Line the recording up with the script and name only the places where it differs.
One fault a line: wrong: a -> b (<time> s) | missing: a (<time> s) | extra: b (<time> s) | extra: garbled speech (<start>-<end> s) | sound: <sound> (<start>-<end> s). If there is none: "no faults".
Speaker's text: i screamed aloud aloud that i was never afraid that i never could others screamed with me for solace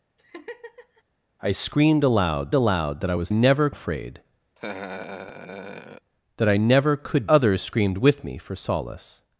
sound: laugh (0.2-1.0 s)
sound: laugh (4.5-6.1 s)